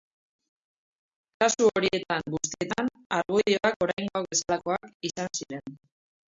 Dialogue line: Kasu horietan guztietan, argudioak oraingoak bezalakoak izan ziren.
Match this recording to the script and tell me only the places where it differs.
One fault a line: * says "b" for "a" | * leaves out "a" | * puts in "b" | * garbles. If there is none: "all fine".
all fine